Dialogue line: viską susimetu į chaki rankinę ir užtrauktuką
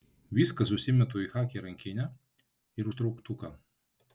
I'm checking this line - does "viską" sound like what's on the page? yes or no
yes